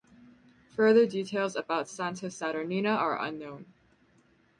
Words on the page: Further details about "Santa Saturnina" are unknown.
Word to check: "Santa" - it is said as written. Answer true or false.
true